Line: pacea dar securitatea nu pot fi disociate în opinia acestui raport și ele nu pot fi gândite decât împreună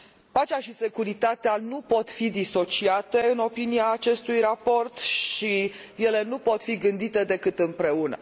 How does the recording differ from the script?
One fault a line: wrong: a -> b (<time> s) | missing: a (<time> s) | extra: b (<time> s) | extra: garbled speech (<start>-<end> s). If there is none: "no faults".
wrong: dar -> și (0.6 s)